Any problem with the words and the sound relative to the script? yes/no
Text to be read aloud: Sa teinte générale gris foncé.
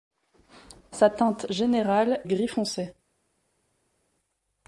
no